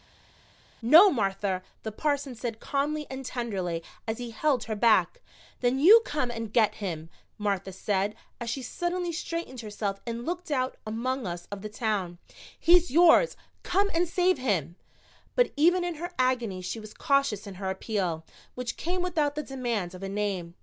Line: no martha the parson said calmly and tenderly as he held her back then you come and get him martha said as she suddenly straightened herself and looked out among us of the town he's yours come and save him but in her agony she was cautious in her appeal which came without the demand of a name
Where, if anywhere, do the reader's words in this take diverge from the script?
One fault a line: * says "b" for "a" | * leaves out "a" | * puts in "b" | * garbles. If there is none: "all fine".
* puts in "even"